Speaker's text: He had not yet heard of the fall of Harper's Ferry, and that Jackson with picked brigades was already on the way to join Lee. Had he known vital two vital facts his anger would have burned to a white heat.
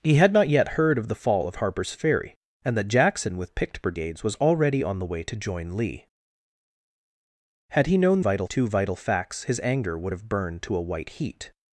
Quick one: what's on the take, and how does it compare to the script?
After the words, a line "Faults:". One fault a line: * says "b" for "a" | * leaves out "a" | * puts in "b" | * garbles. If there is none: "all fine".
He had not yet heard of the fall of Harper's Ferry, and that Jackson with picked brigades was already on the way to join Lee. Had he known vital two vital facts his anger would have burned to a white heat.
Faults:
all fine